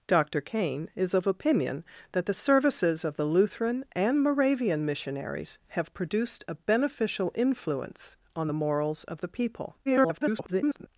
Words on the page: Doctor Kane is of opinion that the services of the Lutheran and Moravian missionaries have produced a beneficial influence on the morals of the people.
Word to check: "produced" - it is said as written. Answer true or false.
true